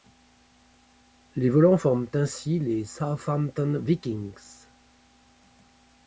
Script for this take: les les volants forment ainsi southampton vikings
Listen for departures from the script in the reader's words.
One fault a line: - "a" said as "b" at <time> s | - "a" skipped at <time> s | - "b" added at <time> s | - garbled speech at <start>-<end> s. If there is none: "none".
- "les" skipped at 1.5 s
- "les" added at 2.6 s